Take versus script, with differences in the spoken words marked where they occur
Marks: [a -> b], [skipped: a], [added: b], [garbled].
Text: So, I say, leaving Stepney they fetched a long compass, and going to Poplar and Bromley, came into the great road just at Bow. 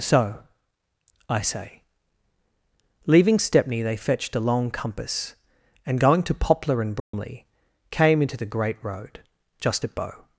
So, I say, leaving Stepney they fetched a long compass, and going to Poplar and Bromley, came into the great road just at Bow.